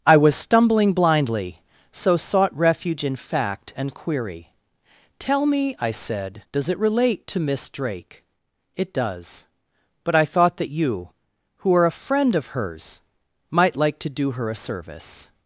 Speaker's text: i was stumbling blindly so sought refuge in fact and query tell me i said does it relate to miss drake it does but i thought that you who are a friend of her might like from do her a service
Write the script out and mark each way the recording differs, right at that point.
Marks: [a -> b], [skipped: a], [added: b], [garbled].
i was stumbling blindly so sought refuge in fact and query tell me i said does it relate to miss drake it does but i thought that you who are a friend of [her -> hers] might like [from -> to] do her a service